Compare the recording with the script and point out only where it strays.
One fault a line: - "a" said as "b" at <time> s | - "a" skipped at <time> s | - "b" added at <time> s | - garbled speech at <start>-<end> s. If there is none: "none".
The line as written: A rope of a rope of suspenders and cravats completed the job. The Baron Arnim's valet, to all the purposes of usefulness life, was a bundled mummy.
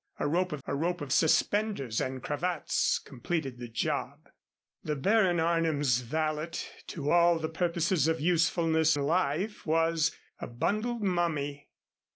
none